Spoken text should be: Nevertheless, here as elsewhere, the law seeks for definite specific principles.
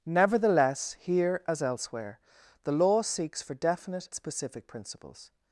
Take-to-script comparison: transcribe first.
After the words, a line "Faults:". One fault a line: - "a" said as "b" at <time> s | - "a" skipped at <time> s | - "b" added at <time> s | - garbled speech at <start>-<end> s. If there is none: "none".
Nevertheless, here as elsewhere, the law seeks for definite specific principles.
Faults:
none